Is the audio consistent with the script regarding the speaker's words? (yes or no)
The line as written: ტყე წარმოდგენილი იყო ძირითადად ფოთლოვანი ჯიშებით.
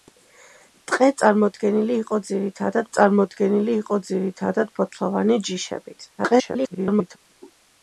no